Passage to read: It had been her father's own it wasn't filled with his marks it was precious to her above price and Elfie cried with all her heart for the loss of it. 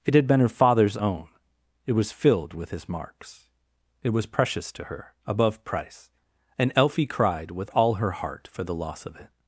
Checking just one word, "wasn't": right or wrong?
wrong